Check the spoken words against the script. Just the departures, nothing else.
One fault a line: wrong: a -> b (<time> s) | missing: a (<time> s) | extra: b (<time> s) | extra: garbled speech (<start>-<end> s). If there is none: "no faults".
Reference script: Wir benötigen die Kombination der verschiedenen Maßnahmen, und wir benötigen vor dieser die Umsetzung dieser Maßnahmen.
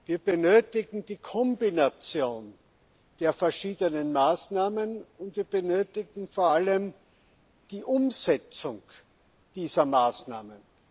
wrong: dieser -> allem (6.5 s)